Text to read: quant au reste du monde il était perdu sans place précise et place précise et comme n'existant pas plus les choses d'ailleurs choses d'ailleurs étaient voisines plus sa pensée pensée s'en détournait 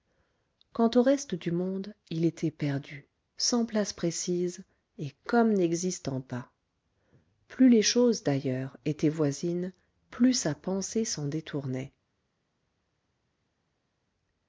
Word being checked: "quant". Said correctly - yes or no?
yes